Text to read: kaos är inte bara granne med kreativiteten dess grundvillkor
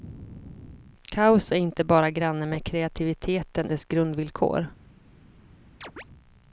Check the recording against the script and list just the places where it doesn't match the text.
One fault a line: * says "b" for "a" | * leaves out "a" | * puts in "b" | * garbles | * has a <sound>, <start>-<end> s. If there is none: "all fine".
* has a chirp, 5.8-6.0 s